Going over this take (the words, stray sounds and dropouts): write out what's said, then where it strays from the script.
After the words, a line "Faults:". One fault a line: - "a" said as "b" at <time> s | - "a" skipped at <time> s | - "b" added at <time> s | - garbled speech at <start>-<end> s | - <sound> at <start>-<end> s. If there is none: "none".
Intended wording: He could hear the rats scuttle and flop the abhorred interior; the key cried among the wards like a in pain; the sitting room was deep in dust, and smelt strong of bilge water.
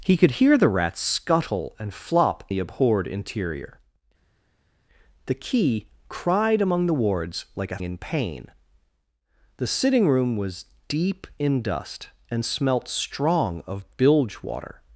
He could hear the rats scuttle and flop the abhorred interior; the key cried among the wards like a in pain; the sitting room was deep in dust, and smelt strong of bilge water.
Faults:
none